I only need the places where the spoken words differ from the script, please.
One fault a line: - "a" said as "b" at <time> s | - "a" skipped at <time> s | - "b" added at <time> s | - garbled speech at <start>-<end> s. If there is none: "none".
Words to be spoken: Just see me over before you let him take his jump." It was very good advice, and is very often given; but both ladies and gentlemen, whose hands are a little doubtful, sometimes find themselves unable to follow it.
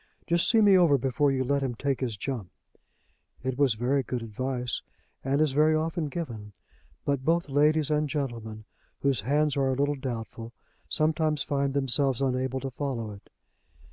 none